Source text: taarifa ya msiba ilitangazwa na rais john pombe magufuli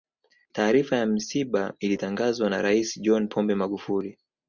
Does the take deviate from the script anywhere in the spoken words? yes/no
no